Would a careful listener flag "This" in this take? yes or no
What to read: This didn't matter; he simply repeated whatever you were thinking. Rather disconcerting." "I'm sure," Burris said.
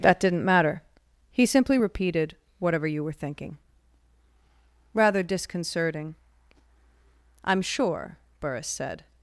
yes